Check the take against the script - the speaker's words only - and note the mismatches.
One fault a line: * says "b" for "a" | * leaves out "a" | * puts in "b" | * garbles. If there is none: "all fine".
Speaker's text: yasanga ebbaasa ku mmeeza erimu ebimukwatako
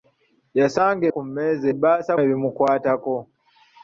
* leaves out "ebbaasa"
* says "ebbaasa" for "erimu"